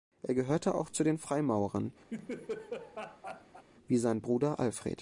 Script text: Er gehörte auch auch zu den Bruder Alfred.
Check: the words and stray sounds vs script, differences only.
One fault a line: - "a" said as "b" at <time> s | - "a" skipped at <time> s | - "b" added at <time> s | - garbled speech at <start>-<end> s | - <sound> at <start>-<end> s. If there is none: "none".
- "auch" skipped at 0.9 s
- "Freimaurern wie sein" added at 1.2 s
- laugh at 2.1-3.6 s